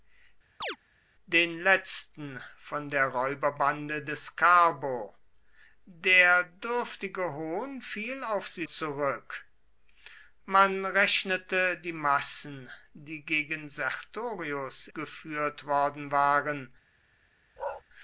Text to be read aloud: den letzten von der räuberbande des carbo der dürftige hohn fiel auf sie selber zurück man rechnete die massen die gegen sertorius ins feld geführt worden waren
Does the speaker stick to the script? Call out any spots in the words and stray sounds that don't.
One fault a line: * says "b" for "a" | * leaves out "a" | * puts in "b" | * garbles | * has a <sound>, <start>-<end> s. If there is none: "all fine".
* has a chirp, 0.6-0.8 s
* leaves out "selber"
* leaves out "ins feld"
* has a bark, 17.6-17.8 s